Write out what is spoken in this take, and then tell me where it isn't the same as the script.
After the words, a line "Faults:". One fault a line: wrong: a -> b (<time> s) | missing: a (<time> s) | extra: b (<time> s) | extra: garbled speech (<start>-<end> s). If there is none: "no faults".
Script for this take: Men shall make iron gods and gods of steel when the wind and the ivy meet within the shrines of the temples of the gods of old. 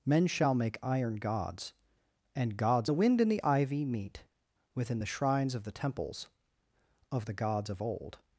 Men shall make iron gods and gods the wind and the ivy meet within the shrines of the temples of the gods of old.
Faults:
missing: of steel when (2.9 s)